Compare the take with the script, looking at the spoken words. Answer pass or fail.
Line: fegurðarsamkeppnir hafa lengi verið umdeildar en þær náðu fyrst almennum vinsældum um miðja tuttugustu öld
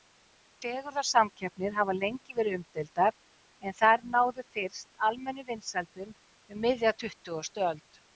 pass